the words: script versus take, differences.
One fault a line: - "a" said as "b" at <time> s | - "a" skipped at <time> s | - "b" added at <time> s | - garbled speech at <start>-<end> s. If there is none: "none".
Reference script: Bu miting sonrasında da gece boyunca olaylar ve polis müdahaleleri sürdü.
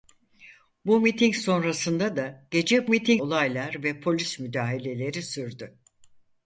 - "boyunca" said as "miting" at 2.9 s